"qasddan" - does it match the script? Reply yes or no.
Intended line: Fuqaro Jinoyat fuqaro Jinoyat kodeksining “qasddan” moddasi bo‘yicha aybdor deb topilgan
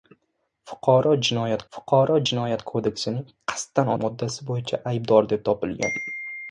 yes